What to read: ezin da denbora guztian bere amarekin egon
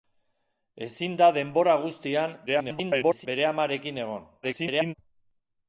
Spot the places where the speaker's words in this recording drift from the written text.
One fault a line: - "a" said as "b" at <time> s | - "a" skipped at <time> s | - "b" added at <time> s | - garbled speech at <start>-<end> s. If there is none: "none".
- garbled speech at 2.5-3.3 s
- garbled speech at 4.4-4.9 s